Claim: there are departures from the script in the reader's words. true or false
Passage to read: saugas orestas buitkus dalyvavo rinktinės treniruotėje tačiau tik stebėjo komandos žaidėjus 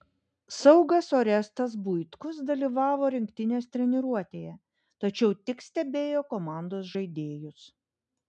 false